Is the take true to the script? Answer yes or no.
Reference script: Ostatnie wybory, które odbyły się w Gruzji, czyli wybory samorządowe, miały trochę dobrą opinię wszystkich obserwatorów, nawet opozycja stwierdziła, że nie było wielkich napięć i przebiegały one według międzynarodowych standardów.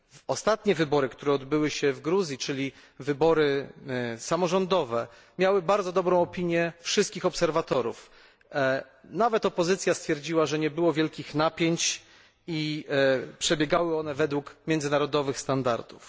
no